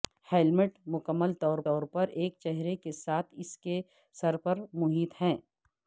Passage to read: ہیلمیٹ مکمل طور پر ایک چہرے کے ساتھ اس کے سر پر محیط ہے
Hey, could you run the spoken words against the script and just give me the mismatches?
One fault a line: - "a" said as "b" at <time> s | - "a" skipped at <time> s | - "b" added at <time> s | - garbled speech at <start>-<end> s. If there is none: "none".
- "طور" added at 1.6 s